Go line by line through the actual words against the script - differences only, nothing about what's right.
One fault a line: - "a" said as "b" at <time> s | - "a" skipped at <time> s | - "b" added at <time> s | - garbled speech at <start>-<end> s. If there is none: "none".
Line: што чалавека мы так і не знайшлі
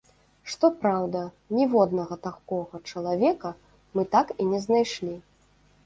- "праўда ніводнага такога" added at 0.8 s